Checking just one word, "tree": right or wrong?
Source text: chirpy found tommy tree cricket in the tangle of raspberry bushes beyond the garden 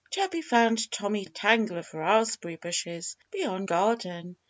wrong